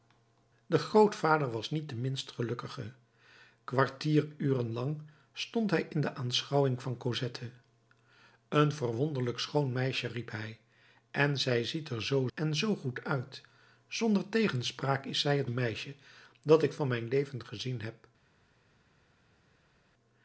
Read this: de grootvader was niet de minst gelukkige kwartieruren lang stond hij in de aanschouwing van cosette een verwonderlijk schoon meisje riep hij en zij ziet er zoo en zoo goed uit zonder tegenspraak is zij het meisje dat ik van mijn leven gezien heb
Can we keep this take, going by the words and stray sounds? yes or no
yes